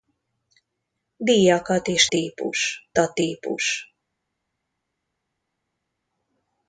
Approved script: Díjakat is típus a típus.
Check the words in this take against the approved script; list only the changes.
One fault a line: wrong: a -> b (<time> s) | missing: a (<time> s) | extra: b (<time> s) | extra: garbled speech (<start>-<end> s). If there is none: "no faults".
no faults